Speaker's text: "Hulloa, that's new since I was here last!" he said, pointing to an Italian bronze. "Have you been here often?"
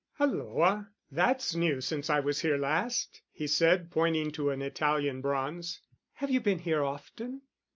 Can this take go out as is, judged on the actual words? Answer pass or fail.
pass